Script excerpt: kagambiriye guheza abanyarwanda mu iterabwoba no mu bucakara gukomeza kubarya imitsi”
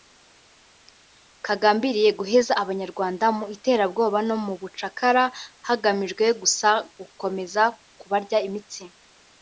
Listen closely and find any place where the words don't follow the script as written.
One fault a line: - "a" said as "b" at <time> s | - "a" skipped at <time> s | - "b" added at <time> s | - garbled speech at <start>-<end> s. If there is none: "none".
- "hagamijwe gusa" added at 5.7 s